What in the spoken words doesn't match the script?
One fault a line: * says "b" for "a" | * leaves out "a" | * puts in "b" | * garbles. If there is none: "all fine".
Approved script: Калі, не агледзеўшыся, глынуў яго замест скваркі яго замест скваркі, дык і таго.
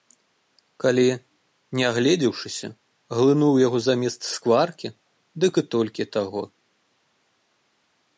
* leaves out "яго замест скваркі"
* puts in "толькі"